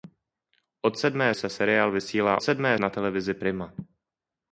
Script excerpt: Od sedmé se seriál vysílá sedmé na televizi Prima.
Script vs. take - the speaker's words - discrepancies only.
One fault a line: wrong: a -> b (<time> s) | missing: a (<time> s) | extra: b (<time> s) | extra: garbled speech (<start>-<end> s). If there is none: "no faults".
no faults